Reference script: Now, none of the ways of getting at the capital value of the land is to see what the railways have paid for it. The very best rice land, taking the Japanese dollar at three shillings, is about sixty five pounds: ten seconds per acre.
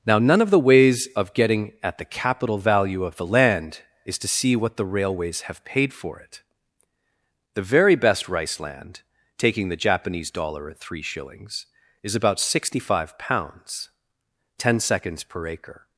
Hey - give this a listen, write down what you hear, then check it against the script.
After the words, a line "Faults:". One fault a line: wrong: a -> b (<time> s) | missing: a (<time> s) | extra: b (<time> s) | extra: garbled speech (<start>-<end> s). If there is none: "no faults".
Now, none of the ways of getting at the capital value of the land is to see what the railways have paid for it. The very best rice land, taking the Japanese dollar at three shillings, is about sixty five pounds: ten seconds per acre.
Faults:
no faults